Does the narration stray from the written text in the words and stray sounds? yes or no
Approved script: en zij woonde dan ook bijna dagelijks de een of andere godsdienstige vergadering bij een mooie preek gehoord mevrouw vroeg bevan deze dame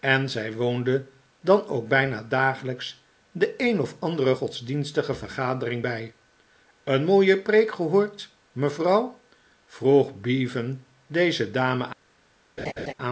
yes